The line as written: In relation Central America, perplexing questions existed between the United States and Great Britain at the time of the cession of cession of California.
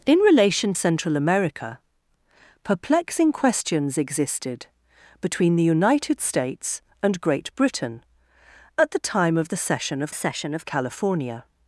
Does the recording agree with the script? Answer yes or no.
yes